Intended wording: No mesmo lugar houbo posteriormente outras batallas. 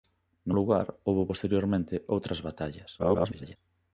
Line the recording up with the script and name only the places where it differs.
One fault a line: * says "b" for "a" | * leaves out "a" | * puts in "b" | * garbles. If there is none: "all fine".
* leaves out "mesmo"
* garbles